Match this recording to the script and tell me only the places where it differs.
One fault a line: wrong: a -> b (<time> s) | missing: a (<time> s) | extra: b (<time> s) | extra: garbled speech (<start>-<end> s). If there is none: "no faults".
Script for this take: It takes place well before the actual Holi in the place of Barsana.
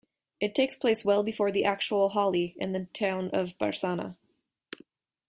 wrong: place -> town (2.9 s)